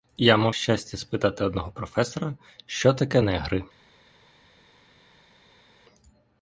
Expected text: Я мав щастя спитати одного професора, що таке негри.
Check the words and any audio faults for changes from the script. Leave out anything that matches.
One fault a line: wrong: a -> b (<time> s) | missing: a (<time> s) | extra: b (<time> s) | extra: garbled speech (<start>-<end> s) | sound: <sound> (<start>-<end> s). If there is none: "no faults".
no faults